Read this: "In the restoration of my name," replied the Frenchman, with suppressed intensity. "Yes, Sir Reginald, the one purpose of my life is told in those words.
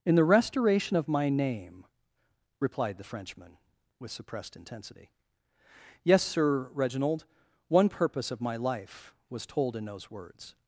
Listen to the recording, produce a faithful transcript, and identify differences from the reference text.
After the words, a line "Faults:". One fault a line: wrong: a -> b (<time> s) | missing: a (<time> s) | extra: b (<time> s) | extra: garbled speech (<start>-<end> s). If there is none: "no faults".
"In the restoration of my name," replied the Frenchman, with suppressed intensity. "Yes, Sir Reginald, one purpose of my life was told in those words.
Faults:
missing: the (7.2 s)
wrong: is -> was (9.3 s)